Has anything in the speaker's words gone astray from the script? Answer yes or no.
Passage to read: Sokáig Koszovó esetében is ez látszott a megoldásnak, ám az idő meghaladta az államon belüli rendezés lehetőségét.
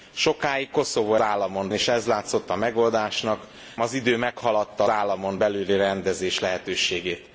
yes